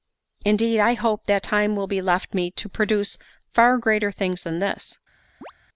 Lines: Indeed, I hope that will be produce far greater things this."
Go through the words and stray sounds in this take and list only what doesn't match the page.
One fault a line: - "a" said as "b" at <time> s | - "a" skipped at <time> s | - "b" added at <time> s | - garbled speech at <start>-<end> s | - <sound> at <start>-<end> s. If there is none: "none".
- "time" added at 1.4 s
- "left me to" added at 2.0 s
- "than" added at 4.4 s
- chirp at 5.4-5.5 s